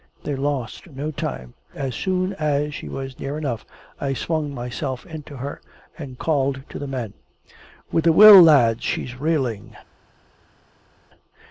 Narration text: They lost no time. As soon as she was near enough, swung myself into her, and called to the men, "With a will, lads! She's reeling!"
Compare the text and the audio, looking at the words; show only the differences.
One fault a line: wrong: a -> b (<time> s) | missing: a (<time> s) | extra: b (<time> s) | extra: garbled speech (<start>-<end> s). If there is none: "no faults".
extra: I (4.0 s)